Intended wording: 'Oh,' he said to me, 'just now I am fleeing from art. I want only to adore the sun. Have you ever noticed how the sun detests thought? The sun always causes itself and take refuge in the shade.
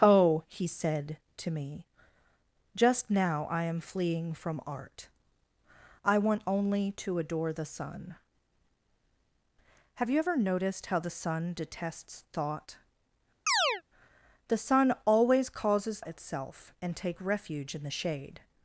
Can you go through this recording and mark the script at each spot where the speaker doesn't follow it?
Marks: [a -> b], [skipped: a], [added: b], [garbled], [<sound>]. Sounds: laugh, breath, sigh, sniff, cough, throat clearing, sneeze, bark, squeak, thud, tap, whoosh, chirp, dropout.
'Oh,' he said to me, 'just now I am fleeing from art. I want only to adore the sun. Have you ever noticed how the sun detests thought? [chirp] The sun always causes itself and take refuge in the shade.